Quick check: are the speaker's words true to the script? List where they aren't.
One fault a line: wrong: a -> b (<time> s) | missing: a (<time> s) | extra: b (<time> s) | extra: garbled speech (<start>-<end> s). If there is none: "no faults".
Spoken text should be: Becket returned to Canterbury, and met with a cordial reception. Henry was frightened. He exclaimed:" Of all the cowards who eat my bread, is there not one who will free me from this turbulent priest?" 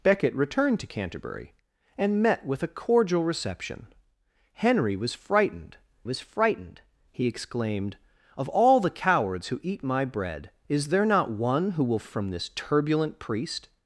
extra: was frightened (6.0 s)
missing: free me (12.0 s)